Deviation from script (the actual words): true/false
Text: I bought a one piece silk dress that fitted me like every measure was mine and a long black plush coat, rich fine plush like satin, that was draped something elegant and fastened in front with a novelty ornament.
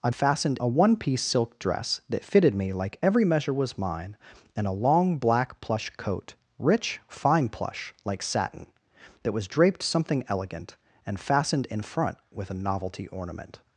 true